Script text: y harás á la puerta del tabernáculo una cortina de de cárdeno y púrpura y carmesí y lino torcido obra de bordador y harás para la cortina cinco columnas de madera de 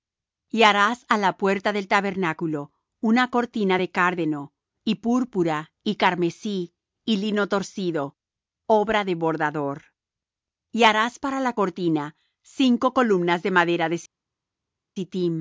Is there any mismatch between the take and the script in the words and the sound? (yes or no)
yes